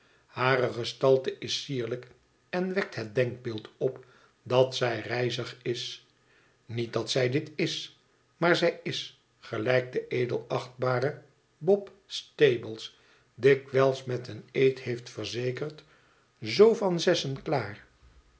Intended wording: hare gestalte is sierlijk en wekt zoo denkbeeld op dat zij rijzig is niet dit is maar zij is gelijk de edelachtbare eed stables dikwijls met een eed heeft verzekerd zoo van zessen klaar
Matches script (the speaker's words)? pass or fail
fail